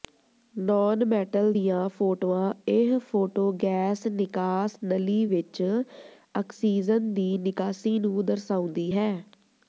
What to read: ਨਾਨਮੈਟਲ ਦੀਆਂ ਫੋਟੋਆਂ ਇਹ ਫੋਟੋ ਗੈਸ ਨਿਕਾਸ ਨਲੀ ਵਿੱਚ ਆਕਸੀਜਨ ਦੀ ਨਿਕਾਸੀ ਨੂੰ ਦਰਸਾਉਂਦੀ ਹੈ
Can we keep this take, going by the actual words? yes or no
yes